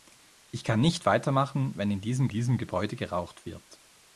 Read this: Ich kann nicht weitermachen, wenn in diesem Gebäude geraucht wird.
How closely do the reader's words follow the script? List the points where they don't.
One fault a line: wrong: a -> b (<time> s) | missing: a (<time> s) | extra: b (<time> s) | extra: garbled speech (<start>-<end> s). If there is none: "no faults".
extra: diesem (2.3 s)